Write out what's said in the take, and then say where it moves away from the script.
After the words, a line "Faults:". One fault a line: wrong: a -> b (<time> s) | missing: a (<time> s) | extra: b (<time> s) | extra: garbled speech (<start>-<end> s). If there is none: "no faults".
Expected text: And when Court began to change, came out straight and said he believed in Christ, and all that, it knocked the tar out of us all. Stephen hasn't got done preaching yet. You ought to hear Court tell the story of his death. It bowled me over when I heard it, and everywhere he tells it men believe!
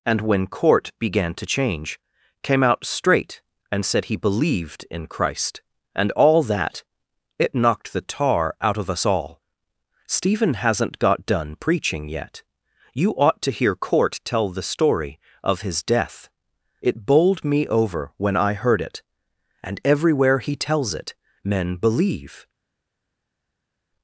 And when Court began to change, came out straight and said he believed in Christ, and all that, it knocked the tar out of us all. Stephen hasn't got done preaching yet. You ought to hear Court tell the story of his death. It bowled me over when I heard it, and everywhere he tells it men believe!
Faults:
no faults